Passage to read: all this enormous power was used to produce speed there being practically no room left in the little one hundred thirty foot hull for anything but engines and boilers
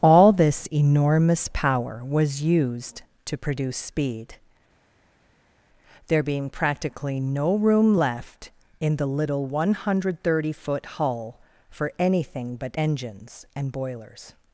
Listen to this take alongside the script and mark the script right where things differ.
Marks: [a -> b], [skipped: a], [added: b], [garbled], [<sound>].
all this enormous power was used to produce speed there being practically no room left in the little one hundred thirty foot hull for anything but engines and boilers